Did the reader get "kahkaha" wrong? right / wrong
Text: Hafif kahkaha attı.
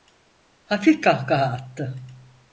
right